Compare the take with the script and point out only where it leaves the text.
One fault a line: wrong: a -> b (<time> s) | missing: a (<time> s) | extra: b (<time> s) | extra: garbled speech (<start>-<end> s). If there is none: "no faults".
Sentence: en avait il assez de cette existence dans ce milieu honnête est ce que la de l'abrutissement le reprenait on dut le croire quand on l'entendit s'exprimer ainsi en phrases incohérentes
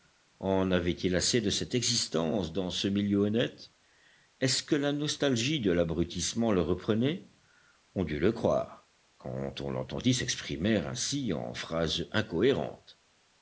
extra: nostalgie (4.9 s)